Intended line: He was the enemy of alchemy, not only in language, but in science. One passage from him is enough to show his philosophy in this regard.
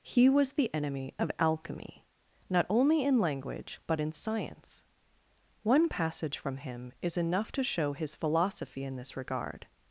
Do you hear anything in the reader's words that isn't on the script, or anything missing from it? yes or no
no